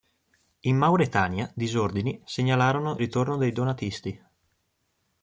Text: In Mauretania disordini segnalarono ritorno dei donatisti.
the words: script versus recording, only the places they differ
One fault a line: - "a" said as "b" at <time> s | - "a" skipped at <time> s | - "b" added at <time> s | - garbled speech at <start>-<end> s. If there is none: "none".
none